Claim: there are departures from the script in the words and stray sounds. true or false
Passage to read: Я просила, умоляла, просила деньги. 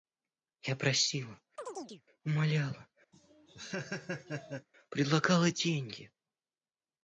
true